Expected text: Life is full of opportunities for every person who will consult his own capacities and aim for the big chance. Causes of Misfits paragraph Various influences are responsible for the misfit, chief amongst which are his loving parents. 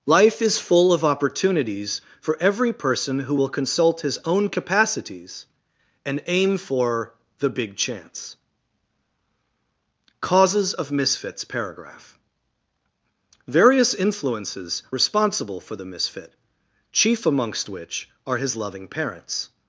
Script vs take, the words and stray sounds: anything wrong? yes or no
yes